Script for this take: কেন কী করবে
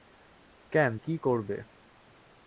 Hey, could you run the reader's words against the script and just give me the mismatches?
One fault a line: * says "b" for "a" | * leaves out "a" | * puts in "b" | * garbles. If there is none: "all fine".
all fine